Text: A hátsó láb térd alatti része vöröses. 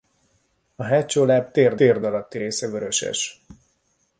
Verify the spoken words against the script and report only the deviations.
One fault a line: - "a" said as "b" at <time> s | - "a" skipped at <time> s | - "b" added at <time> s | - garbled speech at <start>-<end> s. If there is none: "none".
- "térd" added at 1.7 s